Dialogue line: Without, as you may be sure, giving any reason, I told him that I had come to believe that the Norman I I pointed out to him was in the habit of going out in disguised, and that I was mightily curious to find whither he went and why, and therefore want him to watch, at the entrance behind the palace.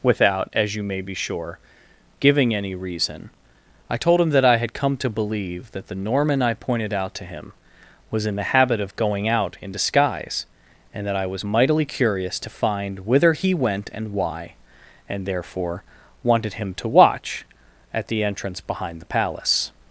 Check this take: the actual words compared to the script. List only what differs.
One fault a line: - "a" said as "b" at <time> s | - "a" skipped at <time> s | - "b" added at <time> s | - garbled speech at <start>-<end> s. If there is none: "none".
- "I" skipped at 6.5 s
- "disguised" said as "disguise" at 9.7 s
- "want" said as "wanted" at 16.2 s